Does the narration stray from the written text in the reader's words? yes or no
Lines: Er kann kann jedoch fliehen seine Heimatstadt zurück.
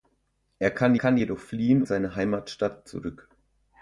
no